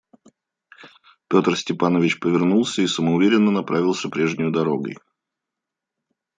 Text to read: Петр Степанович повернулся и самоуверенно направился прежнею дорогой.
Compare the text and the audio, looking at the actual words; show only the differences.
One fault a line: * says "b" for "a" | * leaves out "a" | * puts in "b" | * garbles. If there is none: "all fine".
all fine